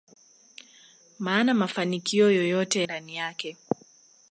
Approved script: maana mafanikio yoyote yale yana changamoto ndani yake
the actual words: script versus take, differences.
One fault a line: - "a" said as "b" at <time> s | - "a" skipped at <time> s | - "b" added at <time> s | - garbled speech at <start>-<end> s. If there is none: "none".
- "yale yana changamoto" skipped at 2.8 s